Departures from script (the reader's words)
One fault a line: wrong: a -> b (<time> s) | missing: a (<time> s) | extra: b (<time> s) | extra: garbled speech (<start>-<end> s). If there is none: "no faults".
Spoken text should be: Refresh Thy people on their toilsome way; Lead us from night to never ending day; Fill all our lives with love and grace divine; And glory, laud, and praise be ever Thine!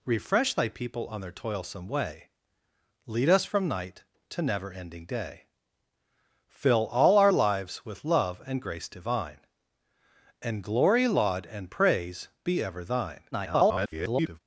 extra: garbled speech (13.3-14.4 s)